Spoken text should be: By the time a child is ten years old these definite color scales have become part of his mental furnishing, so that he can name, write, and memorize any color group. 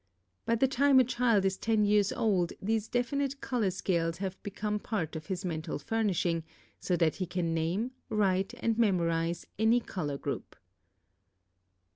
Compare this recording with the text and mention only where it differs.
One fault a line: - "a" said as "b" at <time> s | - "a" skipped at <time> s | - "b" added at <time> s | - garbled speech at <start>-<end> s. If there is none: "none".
none